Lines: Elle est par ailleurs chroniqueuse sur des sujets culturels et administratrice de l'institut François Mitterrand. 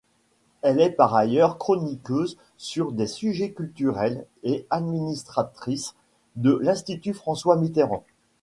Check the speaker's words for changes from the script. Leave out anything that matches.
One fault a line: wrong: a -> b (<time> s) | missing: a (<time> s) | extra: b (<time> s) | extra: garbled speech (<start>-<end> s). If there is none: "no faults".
no faults